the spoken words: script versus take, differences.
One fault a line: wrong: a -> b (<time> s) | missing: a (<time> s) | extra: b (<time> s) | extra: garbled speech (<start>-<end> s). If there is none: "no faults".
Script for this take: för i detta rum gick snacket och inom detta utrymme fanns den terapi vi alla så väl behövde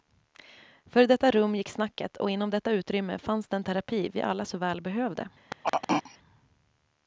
no faults